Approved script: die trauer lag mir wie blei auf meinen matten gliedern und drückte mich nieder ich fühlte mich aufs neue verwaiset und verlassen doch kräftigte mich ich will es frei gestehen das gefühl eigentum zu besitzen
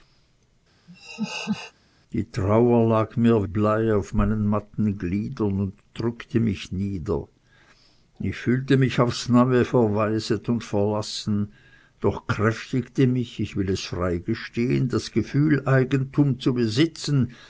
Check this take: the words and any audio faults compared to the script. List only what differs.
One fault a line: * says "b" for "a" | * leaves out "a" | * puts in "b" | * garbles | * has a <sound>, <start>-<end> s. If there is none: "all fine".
* has a laugh, 0.9-1.7 s
* leaves out "wie"